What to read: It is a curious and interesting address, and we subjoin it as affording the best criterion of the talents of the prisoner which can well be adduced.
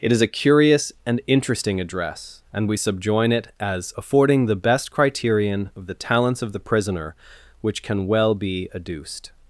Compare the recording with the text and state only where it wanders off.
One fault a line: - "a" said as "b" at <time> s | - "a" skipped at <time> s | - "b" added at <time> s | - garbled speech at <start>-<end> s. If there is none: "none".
none